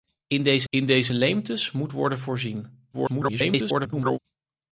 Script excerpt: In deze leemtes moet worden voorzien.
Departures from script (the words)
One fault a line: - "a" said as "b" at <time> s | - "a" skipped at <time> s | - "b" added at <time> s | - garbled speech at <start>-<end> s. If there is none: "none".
- "in deze" added at 0.7 s
- garbled speech at 2.9-4.2 s